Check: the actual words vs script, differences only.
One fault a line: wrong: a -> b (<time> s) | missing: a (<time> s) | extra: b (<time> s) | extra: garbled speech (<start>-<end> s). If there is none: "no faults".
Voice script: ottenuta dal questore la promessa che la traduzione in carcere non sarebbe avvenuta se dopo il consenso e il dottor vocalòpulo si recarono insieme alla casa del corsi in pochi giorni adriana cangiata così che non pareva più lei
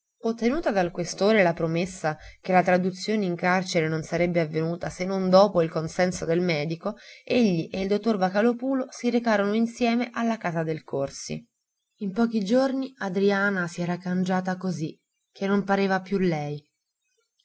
extra: non (5.0 s)
extra: del medico egli (6.2 s)
extra: si era (13.7 s)